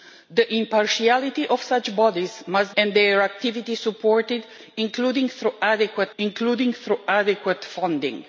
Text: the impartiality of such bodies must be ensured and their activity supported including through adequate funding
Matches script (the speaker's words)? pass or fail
fail